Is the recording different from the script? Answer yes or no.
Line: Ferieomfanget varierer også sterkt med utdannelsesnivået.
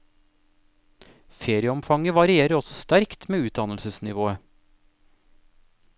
no